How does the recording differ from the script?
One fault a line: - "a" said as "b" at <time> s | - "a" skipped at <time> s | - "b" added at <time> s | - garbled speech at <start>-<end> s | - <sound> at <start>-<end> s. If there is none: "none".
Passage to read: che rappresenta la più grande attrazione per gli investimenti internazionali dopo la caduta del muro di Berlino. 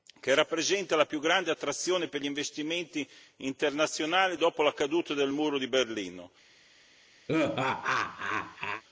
- laugh at 7.3-8.8 s